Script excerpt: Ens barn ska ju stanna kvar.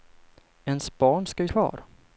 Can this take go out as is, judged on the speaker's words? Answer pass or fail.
fail